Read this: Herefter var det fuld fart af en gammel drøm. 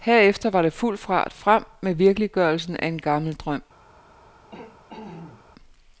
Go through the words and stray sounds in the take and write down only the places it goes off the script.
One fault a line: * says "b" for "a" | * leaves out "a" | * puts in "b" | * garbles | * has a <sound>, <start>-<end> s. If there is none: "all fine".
* puts in "frem med virkeliggørelsen"
* has a throat clearing, 4.5-5.5 s